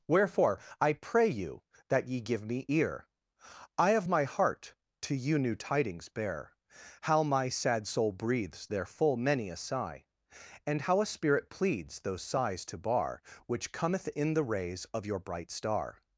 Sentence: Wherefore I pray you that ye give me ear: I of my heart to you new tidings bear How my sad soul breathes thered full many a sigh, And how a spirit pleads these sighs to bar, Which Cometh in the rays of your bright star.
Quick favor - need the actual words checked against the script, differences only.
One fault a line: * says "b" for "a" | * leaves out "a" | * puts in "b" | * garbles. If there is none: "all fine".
* says "there" for "thered"
* says "those" for "these"